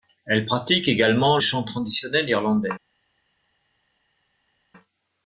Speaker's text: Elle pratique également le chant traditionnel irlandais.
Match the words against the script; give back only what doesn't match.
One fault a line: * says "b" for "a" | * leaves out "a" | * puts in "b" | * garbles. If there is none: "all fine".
* leaves out "le"